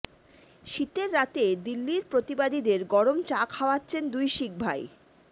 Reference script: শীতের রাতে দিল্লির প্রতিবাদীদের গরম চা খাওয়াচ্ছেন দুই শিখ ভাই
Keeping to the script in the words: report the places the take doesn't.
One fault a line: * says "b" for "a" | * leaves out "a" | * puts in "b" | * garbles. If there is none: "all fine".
all fine